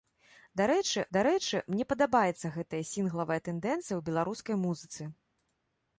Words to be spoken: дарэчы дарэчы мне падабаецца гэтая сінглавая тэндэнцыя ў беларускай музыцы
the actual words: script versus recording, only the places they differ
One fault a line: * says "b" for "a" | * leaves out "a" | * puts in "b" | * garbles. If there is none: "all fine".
all fine